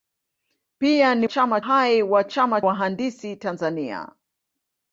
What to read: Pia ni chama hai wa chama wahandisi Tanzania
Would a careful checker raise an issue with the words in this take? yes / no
no